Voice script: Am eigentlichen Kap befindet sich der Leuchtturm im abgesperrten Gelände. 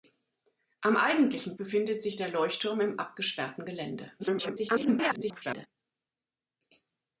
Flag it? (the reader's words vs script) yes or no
yes